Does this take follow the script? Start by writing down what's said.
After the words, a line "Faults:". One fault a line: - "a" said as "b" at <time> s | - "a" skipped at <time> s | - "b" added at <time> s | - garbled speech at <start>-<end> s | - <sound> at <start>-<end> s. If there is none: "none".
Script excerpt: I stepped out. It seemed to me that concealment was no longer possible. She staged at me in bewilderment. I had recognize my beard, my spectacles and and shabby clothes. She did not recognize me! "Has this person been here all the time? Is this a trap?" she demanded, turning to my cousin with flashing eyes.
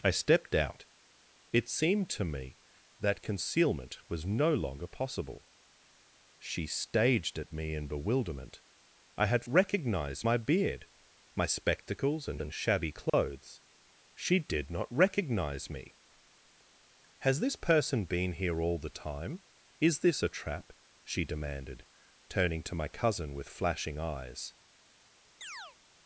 I stepped out. It seemed to me that concealment was no longer possible. She staged at me in bewilderment. I had recognize my beard, my spectacles and and shabby clothes. She did not recognize me! "Has this person been here all the time? Is this a trap?" she demanded, turning to my cousin with flashing eyes.
Faults:
- dropout at 13.1-13.1 s
- chirp at 25.4-25.8 s